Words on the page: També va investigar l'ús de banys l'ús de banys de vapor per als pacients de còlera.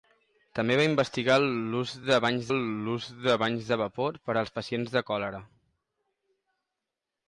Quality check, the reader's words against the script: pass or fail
pass